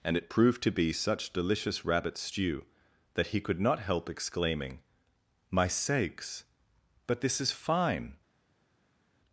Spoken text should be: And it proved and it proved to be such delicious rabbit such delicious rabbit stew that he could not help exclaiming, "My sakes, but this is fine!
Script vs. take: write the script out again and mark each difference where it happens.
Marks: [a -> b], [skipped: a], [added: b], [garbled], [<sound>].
And it proved [skipped: and it proved] to be such delicious rabbit [skipped: such delicious rabbit] stew that he could not help exclaiming, "My sakes, but this is fine!